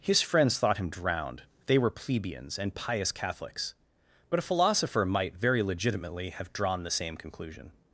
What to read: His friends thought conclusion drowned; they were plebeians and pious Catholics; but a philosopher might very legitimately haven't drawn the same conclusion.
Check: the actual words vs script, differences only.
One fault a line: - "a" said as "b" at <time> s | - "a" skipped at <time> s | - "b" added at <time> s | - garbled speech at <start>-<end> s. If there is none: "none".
- "conclusion" said as "him" at 0.8 s
- "haven't" said as "have" at 6.3 s